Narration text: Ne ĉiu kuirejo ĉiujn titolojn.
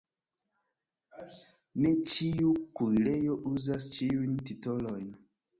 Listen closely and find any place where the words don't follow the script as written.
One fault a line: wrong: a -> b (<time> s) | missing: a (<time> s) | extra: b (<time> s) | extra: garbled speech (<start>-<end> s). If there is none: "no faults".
extra: uzas (3.5 s)